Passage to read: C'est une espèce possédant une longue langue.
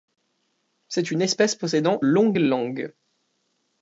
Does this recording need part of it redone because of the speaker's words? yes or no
yes